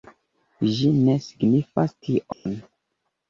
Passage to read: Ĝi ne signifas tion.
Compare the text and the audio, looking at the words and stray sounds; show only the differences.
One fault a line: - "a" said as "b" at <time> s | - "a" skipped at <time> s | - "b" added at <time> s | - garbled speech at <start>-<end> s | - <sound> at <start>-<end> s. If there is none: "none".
- dropout at 2.3-2.5 s